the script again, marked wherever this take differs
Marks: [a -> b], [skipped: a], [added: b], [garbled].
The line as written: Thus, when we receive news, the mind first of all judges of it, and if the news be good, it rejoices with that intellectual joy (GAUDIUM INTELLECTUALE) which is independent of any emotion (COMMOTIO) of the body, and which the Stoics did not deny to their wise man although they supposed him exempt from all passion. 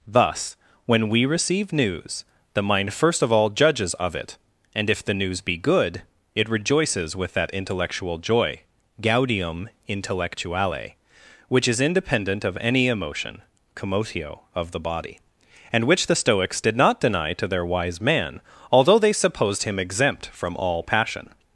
Thus, when we receive news, the mind first of all judges of it, and if the news be good, it rejoices with that intellectual joy (GAUDIUM INTELLECTUALE) which is independent of any emotion (COMMOTIO) of the body, and which the Stoics did not deny to their wise man although they supposed him exempt from all passion.